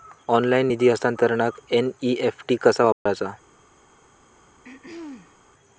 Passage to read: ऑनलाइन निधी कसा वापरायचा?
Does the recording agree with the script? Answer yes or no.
no